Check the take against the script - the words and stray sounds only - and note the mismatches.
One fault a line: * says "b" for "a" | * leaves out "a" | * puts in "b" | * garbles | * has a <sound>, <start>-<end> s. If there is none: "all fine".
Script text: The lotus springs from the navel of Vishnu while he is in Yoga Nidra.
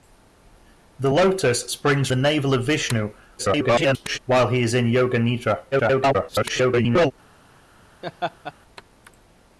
* leaves out "from"
* garbles
* garbles
* has a laugh, 8.0-8.5 s